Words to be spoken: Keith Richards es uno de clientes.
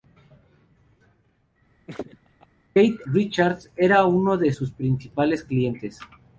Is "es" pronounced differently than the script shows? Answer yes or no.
yes